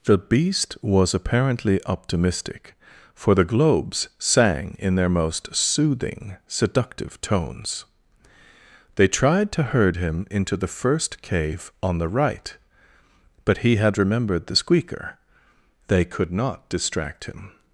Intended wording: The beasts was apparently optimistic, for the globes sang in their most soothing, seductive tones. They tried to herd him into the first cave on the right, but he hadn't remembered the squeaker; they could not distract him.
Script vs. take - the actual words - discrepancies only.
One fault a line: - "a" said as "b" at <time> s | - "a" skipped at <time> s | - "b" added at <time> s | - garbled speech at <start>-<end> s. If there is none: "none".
- "beasts" said as "beast" at 0.2 s
- "hadn't" said as "had" at 13.8 s